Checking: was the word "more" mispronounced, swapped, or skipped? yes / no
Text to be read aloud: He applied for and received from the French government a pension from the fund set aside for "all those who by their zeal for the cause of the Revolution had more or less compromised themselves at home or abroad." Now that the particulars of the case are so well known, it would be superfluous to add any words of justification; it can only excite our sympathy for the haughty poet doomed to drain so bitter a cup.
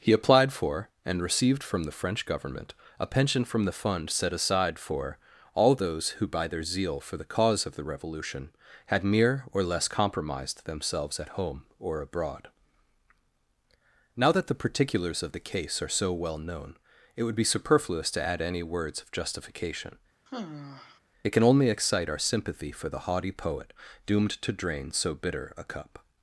yes